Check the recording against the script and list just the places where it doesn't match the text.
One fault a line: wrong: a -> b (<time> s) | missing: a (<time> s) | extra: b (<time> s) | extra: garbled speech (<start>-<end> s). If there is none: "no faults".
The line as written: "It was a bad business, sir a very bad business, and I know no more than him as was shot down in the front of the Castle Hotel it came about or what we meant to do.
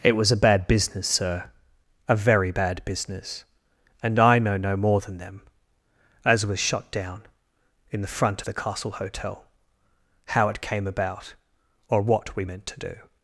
wrong: him -> them (5.2 s)
extra: how (10.3 s)